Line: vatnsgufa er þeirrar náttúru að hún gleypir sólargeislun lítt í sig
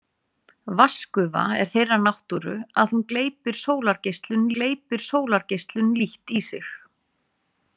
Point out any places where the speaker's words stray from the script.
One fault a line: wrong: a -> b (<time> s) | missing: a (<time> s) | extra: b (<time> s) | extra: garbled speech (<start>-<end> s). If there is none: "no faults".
extra: gleypir sólargeislun (4.6 s)